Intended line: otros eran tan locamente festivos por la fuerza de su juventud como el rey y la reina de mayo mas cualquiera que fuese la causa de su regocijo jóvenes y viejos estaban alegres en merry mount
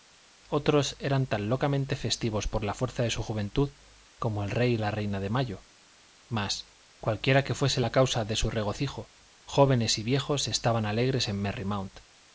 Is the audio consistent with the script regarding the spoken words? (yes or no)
yes